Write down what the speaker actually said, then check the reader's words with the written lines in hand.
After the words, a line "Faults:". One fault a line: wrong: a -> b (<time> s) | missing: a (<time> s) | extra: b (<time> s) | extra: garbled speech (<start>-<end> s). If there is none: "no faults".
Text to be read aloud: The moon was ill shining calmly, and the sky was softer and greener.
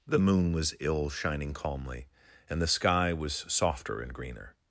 The moon was ill shining calmly, and the sky was softer and greener.
Faults:
no faults